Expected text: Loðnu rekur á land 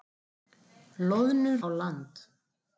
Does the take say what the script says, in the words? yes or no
no